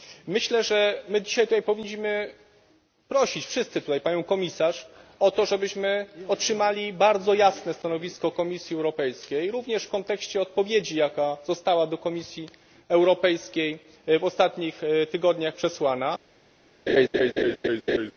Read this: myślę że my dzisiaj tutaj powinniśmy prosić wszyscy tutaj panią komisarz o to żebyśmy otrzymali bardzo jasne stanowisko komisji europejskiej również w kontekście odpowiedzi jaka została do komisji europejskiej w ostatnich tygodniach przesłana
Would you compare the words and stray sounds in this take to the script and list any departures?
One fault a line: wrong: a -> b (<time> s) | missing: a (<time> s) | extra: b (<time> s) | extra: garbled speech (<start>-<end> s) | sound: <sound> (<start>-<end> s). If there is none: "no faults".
sound: laugh (16.9-18.1 s)